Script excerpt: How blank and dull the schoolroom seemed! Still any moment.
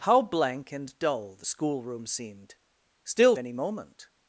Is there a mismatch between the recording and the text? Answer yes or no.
no